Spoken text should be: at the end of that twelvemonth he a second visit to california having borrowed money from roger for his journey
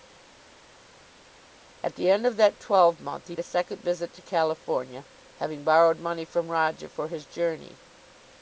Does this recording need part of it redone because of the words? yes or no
no